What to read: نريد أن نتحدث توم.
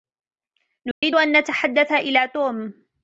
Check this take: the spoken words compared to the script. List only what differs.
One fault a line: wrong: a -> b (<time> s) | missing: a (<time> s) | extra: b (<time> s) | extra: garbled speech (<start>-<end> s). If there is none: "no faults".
extra: إلى (1.9 s)